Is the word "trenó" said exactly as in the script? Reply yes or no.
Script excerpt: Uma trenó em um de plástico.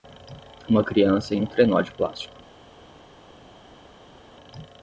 no